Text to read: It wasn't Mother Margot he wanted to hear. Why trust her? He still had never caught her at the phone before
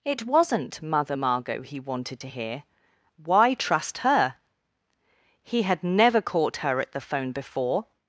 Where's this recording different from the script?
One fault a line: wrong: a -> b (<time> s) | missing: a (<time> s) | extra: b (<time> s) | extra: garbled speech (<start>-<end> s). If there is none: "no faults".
missing: still (5.6 s)